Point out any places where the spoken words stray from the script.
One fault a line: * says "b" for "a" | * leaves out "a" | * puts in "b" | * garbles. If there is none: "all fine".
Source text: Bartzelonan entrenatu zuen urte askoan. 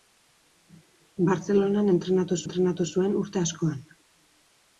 * puts in "entrenatu"